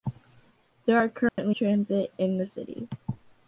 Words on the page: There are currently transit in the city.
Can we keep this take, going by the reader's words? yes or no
yes